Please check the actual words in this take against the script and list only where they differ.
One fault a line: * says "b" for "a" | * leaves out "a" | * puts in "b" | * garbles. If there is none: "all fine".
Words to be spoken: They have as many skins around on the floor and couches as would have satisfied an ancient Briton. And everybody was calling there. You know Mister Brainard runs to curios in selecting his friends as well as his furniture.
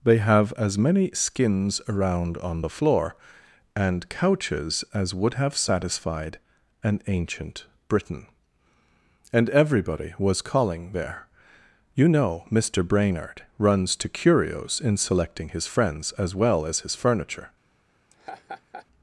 all fine